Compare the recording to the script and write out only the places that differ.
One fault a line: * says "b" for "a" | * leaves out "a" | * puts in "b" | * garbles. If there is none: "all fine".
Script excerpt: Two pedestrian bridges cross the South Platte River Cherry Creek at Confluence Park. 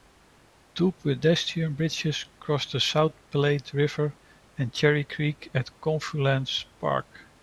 * puts in "and"